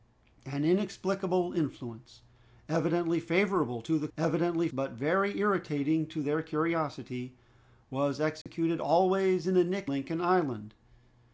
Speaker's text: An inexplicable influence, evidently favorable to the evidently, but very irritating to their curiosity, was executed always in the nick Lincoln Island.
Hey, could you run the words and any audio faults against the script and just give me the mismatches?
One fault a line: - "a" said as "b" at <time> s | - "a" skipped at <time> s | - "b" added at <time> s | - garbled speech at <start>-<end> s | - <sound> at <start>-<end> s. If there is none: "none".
- dropout at 8.4-8.5 s